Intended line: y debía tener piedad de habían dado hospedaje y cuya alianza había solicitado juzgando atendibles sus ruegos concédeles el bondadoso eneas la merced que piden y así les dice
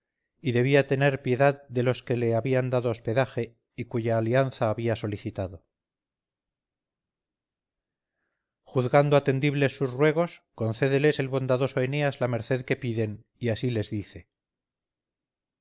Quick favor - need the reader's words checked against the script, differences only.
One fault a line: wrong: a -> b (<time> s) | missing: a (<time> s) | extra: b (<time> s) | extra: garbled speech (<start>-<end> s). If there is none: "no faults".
extra: los que le (1.8 s)